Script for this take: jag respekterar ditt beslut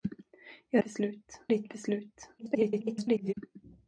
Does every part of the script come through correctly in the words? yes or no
no